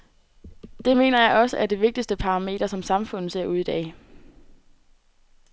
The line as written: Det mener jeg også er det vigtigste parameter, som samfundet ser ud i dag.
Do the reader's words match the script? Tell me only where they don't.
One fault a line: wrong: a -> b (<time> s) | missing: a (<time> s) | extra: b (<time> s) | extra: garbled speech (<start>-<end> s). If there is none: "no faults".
no faults